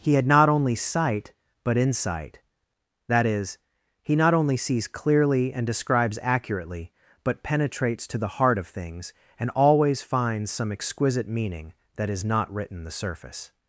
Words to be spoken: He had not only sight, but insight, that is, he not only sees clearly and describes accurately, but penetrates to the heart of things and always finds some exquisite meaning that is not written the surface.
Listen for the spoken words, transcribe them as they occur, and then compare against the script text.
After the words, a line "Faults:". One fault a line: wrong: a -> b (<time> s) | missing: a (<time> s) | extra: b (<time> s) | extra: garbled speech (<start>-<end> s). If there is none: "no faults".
He had not only sight, but insight, that is, he not only sees clearly and describes accurately, but penetrates to the heart of things and always finds some exquisite meaning that is not written the surface.
Faults:
no faults